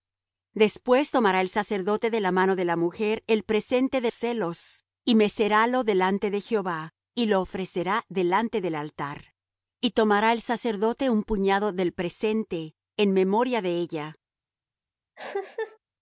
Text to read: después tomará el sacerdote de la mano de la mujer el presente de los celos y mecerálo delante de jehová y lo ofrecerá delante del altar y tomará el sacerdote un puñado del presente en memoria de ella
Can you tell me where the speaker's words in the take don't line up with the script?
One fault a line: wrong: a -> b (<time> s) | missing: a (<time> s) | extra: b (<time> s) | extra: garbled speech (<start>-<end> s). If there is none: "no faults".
missing: los (4.1 s)